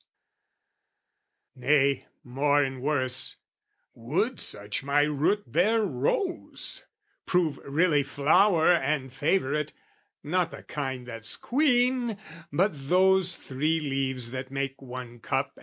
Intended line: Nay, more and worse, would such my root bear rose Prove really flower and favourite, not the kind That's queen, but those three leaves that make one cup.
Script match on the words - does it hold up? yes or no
yes